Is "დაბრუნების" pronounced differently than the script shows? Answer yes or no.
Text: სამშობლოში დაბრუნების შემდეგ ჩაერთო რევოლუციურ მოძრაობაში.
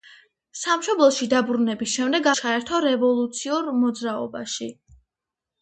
no